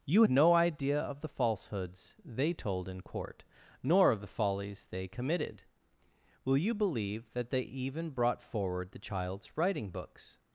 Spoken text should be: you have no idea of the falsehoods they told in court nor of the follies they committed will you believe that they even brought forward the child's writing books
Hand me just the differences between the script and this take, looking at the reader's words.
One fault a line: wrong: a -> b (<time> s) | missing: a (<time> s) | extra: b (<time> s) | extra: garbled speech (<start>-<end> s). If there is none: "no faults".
missing: have (0.2 s)